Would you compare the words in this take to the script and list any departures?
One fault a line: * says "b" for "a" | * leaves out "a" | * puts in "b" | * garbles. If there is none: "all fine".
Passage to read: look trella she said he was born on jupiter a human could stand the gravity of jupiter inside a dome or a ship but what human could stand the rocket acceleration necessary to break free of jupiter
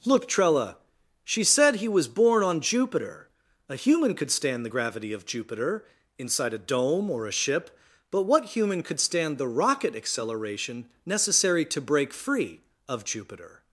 all fine